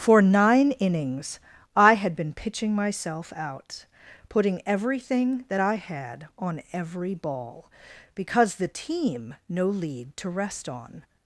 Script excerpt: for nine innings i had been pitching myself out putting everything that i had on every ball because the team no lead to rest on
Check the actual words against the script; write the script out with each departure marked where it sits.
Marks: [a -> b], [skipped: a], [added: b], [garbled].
for nine innings i had been pitching myself out putting everything that i had on every ball because the team no lead to rest on